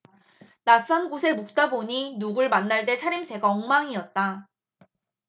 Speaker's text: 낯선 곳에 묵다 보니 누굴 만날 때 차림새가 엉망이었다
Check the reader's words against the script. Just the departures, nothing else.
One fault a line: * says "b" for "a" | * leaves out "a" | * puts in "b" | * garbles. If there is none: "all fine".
all fine